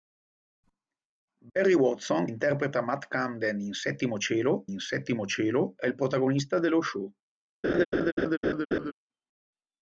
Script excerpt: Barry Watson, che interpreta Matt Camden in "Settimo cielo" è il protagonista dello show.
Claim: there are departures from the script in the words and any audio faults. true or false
true